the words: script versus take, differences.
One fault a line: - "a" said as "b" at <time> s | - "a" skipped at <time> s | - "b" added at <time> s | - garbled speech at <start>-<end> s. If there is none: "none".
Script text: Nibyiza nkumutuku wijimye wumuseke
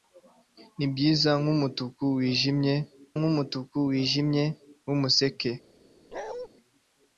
- "nkumutuku wijimye" added at 3.2 s